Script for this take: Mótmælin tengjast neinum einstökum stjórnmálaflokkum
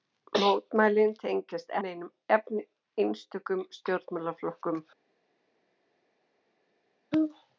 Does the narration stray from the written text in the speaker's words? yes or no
no